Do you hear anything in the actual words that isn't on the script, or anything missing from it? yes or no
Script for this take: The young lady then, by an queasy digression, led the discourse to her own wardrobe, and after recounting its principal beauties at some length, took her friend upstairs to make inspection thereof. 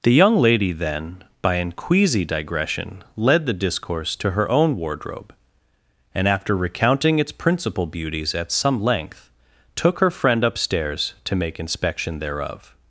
no